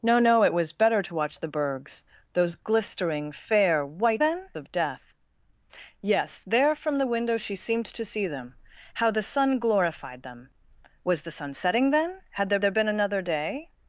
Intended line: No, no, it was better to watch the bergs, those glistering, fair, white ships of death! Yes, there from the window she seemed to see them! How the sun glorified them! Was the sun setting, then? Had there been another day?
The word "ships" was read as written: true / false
false